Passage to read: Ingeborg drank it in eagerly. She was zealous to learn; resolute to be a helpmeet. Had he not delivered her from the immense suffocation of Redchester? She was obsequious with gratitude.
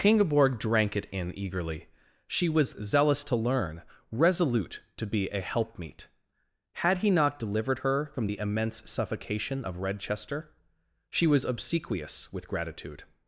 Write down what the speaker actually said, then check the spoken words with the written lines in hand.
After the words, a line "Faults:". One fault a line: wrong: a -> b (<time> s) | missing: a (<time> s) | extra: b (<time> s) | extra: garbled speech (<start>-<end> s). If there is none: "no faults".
Ingeborg drank it in eagerly. She was zealous to learn; resolute to be a helpmeet. Had he not delivered her from the immense suffocation of Redchester? She was obsequious with gratitude.
Faults:
no faults